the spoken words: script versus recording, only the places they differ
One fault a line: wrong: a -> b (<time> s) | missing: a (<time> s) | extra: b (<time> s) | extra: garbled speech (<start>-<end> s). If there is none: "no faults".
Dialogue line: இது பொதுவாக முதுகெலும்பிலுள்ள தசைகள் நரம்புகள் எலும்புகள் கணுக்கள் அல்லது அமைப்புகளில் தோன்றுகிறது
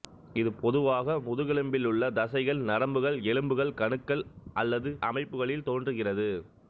no faults